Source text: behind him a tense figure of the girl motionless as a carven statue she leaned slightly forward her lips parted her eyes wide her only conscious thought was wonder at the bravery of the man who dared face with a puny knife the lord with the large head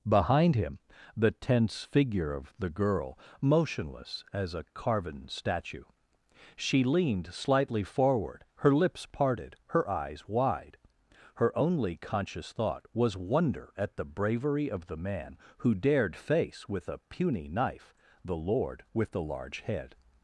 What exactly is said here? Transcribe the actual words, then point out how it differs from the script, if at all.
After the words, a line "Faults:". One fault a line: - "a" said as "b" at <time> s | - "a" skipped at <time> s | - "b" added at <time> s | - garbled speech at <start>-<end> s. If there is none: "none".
behind him the tense figure of the girl motionless as a carven statue she leaned slightly forward her lips parted her eyes wide her only conscious thought was wonder at the bravery of the man who dared face with a puny knife the lord with the large head
Faults:
- "a" said as "the" at 1.1 s